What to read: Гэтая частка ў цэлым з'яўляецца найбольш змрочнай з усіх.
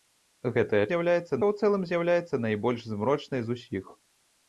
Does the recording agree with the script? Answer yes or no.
no